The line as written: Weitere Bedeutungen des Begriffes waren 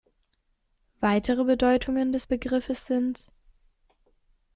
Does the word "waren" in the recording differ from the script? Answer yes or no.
yes